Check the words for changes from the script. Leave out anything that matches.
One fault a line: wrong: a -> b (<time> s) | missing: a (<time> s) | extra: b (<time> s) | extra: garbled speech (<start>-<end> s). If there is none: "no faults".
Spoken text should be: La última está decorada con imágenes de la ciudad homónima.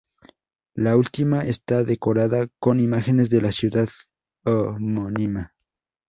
no faults